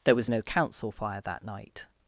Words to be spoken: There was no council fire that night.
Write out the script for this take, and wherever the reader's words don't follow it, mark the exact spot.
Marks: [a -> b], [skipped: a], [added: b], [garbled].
There was no council fire that night.